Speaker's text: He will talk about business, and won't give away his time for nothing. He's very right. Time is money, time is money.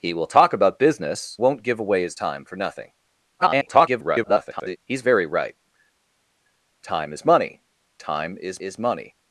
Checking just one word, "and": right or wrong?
wrong